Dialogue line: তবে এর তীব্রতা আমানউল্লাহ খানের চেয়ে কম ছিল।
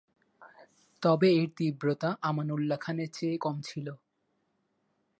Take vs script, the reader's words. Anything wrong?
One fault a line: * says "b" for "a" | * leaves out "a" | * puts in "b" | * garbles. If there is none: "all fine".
all fine